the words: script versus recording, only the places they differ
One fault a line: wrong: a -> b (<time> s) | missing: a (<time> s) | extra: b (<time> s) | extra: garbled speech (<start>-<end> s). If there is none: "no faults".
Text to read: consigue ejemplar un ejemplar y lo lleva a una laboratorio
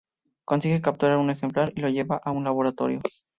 wrong: ejemplar -> capturar (0.8 s)
wrong: una -> un (2.3 s)